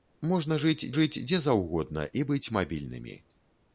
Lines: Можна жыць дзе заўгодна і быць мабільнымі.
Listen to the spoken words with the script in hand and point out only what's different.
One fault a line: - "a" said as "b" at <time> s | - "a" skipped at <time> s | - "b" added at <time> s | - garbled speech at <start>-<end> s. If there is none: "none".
- "жыць" added at 1.0 s